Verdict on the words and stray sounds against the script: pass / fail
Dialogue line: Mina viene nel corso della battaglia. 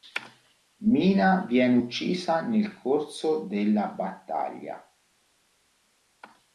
fail